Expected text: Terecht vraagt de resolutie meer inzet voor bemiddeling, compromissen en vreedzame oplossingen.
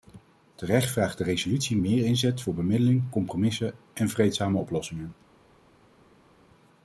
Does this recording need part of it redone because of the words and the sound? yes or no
no